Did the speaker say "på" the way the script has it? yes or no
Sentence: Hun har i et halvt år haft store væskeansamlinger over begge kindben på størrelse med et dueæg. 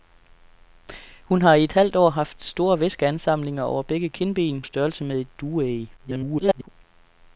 no